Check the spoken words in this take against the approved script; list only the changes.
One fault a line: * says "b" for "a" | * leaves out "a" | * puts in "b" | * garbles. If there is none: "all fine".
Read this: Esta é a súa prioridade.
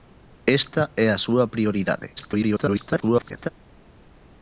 * garbles